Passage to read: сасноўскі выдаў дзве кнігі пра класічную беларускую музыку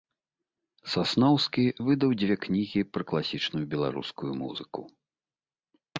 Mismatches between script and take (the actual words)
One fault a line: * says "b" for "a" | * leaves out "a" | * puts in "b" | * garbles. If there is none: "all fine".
all fine